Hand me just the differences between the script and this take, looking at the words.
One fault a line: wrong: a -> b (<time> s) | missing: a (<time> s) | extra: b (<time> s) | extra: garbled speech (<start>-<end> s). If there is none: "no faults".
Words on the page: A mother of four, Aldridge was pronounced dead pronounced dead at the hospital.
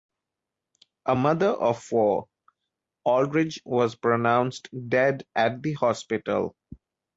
missing: pronounced dead (5.2 s)